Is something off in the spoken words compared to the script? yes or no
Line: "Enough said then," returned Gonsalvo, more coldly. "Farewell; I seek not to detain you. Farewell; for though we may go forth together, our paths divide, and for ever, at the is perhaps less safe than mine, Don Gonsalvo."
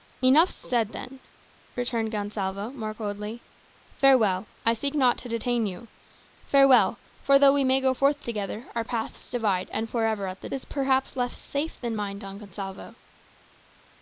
no